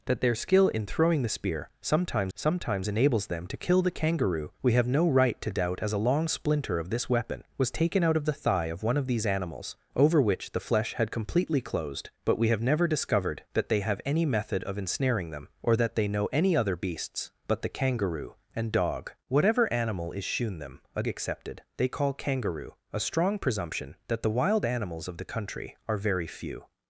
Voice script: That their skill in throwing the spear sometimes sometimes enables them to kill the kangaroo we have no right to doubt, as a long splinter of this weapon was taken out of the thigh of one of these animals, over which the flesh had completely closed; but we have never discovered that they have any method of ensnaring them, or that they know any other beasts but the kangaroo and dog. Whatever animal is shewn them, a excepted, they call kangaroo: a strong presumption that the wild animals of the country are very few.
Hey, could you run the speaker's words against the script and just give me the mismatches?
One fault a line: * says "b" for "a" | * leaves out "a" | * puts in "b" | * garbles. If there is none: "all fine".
all fine